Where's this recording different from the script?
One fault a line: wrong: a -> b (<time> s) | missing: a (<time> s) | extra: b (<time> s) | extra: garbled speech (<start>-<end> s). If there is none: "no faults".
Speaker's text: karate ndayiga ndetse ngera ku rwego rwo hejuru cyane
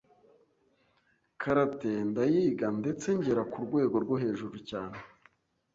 no faults